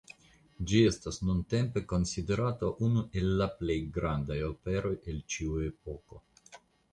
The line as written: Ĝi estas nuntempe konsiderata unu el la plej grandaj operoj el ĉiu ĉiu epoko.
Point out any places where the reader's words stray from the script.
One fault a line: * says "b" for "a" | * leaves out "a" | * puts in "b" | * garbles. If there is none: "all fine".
* leaves out "ĉiu"